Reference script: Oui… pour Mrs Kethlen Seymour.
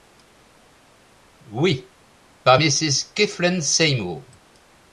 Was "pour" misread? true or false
true